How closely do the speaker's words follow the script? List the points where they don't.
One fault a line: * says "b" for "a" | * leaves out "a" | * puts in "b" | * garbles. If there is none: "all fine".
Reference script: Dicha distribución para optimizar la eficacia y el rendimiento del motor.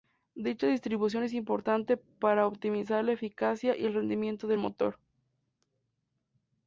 * puts in "es importante"